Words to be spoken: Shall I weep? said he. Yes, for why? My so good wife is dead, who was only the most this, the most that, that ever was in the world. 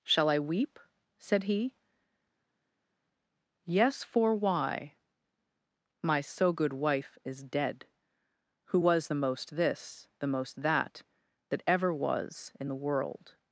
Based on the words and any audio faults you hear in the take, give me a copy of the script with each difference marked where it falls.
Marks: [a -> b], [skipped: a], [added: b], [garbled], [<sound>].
Shall I weep? said he. Yes, for why? My so good wife is dead, who was [skipped: only] the most this, the most that, that ever was in the world.